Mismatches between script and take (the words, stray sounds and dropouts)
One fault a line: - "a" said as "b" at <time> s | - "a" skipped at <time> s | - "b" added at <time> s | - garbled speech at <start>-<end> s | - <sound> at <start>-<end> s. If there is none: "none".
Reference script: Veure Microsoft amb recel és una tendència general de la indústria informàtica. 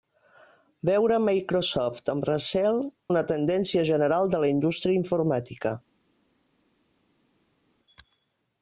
- "és" skipped at 2.8 s